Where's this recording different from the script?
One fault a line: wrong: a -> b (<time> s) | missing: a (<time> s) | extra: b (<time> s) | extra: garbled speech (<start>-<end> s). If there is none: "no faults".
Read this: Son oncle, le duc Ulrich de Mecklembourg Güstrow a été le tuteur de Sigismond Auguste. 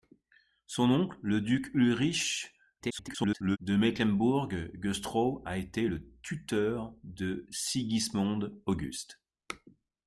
extra: garbled speech (2.8-3.6 s)